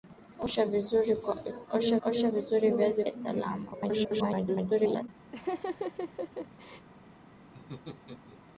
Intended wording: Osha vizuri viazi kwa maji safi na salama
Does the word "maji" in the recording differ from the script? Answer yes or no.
yes